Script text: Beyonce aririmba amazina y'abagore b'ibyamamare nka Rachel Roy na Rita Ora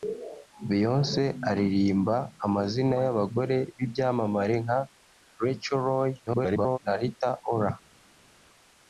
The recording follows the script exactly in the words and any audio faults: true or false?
false